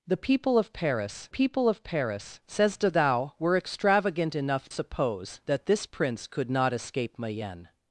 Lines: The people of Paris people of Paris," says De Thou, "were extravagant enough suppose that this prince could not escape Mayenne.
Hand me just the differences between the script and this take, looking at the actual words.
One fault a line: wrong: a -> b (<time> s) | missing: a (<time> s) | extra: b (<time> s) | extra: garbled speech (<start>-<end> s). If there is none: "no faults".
no faults